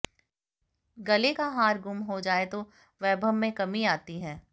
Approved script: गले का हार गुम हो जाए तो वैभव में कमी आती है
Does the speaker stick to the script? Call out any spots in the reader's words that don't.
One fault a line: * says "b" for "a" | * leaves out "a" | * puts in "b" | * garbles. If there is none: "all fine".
all fine